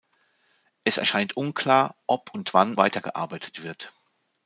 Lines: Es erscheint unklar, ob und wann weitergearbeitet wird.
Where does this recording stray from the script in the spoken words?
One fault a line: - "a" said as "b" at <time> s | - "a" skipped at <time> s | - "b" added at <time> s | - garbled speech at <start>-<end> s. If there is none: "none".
none